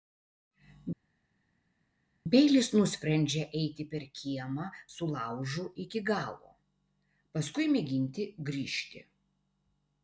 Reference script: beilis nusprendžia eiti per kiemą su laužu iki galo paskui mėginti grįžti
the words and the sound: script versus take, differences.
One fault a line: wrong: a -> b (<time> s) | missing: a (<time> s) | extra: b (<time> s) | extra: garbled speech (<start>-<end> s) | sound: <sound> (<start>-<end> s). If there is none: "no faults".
no faults